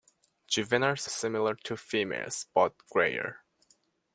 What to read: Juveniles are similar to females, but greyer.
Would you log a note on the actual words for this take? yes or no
yes